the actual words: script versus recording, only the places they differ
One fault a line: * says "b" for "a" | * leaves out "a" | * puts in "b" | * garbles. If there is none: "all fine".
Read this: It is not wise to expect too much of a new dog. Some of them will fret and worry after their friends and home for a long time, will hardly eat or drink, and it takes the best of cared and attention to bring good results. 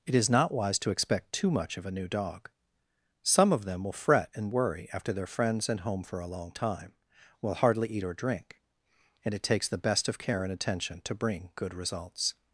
* says "care" for "cared"